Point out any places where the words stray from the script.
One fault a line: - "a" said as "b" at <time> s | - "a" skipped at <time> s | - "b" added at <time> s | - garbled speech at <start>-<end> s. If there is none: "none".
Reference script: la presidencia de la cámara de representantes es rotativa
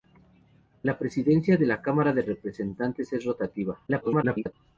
- garbled speech at 3.9-4.5 s